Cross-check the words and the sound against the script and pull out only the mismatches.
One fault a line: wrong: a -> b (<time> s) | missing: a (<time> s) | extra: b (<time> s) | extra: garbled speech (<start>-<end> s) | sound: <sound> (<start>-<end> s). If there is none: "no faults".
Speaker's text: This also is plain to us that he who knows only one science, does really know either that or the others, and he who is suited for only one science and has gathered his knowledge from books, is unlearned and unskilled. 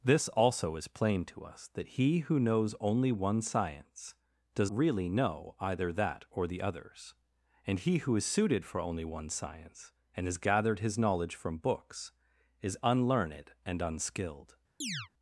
sound: chirp (14.8-15.1 s)